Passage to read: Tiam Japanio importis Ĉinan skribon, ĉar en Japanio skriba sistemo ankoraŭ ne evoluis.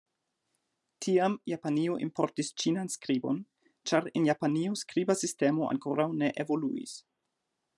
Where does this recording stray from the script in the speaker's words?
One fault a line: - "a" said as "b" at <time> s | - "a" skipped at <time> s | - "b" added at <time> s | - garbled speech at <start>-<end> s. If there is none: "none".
none